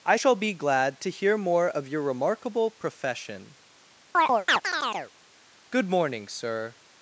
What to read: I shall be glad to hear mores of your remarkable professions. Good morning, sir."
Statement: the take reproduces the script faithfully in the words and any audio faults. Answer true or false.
false